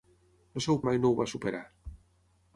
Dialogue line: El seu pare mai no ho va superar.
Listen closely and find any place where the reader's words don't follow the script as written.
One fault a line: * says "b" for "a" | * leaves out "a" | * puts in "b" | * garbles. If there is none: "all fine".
* leaves out "pare"